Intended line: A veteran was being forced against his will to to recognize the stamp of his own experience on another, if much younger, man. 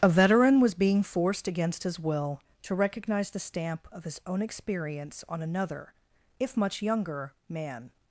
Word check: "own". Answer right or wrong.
right